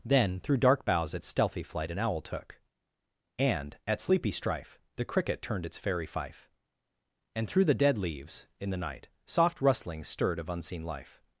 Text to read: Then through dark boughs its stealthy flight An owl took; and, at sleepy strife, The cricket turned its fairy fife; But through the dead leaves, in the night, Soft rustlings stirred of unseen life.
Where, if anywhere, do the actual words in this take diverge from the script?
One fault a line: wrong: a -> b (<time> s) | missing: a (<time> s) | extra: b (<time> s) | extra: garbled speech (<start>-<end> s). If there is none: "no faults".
wrong: But -> And (7.3 s)